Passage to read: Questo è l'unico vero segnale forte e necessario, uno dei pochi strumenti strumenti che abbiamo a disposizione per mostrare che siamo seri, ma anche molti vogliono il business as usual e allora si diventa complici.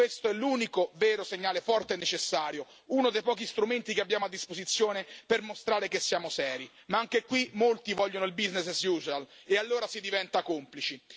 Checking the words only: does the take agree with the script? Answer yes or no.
no